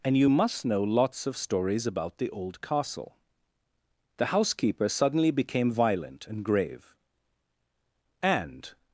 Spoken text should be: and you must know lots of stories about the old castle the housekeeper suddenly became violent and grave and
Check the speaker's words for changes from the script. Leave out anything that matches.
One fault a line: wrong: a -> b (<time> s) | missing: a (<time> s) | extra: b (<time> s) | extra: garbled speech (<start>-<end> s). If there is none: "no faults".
no faults